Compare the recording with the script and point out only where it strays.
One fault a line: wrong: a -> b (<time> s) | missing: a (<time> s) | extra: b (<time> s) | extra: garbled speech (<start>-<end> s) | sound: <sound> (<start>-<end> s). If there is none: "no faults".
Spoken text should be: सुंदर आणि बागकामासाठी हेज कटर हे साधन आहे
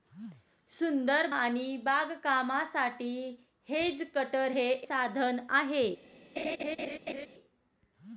sound: laugh (6.4-7.3 s)